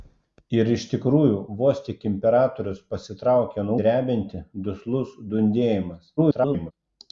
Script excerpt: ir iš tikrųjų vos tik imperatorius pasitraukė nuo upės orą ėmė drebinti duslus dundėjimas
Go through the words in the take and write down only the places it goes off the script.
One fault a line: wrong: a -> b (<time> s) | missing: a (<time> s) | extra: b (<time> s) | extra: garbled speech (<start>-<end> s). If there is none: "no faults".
missing: upės orą ėmė (3.8 s)
extra: garbled speech (6.2-6.7 s)